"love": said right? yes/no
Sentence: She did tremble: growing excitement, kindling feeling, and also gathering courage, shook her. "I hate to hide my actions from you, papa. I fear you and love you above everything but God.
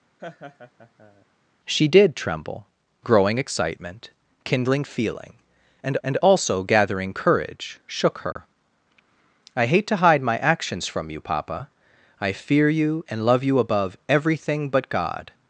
yes